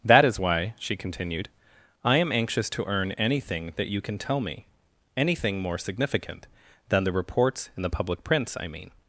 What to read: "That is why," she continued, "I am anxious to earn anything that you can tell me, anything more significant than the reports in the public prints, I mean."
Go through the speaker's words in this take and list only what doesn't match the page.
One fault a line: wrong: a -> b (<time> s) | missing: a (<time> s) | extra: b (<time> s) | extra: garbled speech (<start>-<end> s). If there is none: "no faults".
no faults